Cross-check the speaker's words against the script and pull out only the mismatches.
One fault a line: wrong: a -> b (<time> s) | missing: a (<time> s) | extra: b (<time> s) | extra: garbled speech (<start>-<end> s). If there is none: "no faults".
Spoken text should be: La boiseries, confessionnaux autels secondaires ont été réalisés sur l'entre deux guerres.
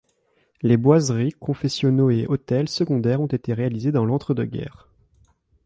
wrong: La -> Les (0.6 s)
extra: et (2.1 s)
wrong: sur -> dans (3.9 s)